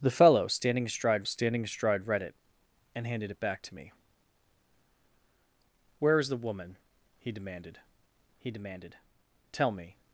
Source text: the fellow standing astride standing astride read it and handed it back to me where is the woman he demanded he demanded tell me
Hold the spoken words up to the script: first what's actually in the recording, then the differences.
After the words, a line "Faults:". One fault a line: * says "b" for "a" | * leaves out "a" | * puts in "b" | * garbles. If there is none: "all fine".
the fellow standing astride standing astride read it and handed it back to me where is the woman he demanded he demanded tell me
Faults:
all fine